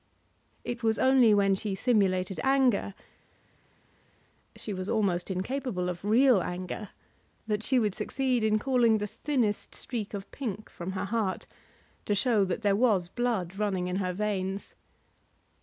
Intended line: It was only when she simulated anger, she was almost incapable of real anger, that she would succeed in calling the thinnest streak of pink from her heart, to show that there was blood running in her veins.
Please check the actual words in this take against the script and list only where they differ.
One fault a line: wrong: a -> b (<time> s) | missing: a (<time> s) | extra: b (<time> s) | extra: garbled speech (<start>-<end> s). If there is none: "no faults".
no faults